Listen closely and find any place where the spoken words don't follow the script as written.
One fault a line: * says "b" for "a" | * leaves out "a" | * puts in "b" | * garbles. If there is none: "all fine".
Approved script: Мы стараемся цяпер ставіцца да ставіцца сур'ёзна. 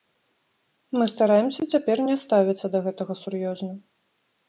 * puts in "не"
* says "гэтага" for "ставіцца"